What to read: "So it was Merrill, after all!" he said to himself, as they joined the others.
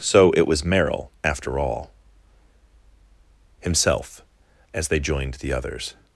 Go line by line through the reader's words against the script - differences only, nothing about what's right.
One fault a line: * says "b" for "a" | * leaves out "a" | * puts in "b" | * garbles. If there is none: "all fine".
* leaves out "he said to"